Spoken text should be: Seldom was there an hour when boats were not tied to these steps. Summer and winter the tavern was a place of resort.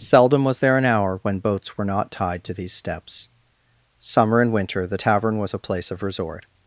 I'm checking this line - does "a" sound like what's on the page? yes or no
yes